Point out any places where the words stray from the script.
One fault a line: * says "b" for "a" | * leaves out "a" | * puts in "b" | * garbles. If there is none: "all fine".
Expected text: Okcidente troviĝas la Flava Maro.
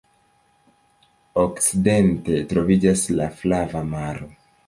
all fine